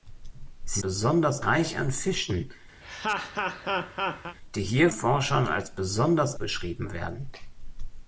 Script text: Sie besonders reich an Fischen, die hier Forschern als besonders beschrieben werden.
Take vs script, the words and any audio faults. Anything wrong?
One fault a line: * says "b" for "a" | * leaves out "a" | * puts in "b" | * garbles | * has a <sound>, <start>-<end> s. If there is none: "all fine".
* has a laugh, 2.8-4.4 s